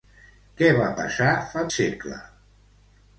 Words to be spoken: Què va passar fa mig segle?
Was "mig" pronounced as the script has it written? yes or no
no